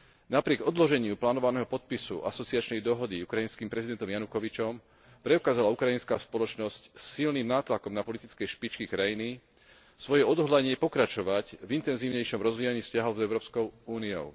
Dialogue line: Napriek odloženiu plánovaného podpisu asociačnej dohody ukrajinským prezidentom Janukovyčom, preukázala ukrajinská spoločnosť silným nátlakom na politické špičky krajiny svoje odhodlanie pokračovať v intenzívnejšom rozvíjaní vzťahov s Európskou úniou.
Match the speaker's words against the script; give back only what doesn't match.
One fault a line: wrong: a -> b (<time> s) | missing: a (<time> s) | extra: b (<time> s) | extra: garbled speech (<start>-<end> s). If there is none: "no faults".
no faults